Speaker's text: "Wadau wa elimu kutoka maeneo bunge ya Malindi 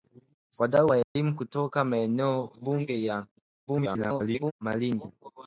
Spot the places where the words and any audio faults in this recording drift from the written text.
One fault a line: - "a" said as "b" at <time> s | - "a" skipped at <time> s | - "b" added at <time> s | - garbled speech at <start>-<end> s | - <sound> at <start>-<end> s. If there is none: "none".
- dropout at 1.0-1.2 s
- garbled speech at 3.7-4.5 s